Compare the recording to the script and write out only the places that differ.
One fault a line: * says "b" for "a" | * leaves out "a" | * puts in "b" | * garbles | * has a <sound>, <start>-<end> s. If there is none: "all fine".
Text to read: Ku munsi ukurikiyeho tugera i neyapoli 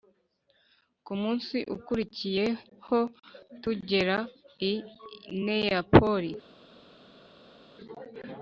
all fine